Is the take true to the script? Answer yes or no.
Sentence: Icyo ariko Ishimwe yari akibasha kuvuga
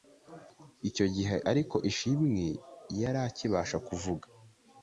no